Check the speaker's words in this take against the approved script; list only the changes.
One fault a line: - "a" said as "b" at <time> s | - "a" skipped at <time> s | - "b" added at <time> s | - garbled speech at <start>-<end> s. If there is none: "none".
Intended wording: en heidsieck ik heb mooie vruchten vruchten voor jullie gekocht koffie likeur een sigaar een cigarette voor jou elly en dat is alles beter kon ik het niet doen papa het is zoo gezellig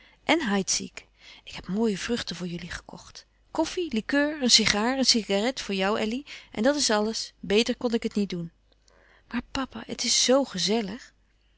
- "vruchten" skipped at 2.4 s
- "maar" added at 9.3 s